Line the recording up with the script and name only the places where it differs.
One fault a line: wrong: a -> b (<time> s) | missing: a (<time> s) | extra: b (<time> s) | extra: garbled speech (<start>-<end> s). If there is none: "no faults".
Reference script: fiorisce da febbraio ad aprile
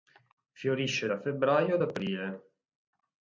no faults